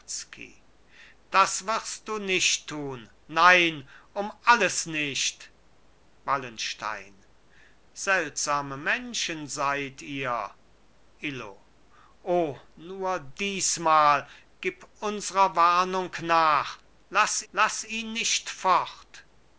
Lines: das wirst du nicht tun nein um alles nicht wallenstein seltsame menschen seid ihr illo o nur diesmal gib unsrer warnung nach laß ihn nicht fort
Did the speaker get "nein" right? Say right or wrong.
right